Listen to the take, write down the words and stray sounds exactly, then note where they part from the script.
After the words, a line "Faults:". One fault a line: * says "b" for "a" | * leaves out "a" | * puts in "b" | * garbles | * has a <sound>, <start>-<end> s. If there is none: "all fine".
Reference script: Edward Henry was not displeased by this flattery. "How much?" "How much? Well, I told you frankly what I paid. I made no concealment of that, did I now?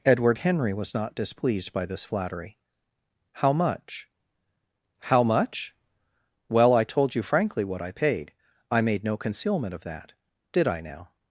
Edward Henry was not displeased by this flattery. "How much?" "How much? Well, I told you frankly what I paid. I made no concealment of that, did I now?
Faults:
all fine